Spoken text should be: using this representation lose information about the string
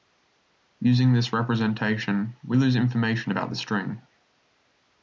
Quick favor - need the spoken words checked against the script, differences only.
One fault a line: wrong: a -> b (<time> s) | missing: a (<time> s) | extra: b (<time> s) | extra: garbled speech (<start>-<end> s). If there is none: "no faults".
extra: we (2.4 s)